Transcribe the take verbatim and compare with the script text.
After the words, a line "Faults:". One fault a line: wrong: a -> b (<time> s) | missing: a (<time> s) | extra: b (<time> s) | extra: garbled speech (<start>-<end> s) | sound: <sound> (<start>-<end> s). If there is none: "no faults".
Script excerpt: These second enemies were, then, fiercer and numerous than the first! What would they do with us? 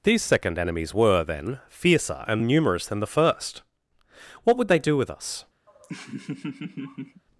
These second enemies were, then, fiercer and numerous than the first! What would they do with us?
Faults:
sound: laugh (5.7-7.2 s)